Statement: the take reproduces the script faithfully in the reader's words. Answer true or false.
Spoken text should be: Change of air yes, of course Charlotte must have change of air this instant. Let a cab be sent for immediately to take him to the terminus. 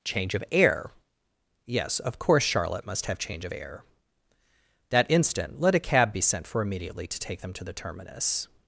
false